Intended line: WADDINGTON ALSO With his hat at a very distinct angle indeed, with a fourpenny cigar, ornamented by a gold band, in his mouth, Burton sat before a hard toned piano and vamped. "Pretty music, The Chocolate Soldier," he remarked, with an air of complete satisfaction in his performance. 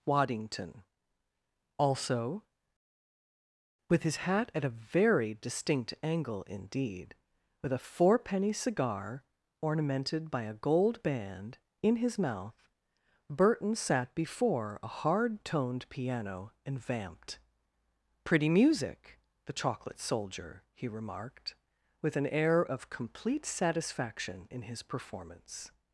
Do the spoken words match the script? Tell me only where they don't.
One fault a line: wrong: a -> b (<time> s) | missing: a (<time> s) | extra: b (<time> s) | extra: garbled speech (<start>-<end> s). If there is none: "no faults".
no faults